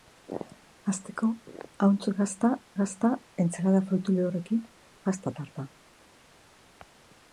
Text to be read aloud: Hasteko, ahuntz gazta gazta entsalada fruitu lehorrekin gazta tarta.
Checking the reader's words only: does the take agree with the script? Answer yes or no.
yes